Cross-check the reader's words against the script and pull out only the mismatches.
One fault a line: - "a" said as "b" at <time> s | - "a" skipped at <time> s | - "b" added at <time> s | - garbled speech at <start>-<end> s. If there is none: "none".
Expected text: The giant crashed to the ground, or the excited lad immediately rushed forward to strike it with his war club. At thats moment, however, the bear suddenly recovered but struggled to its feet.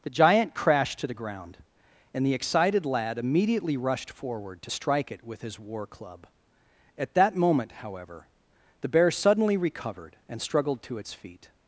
- "or" said as "and" at 2.1 s
- "thats" said as "that" at 7.1 s
- "but" said as "and" at 10.3 s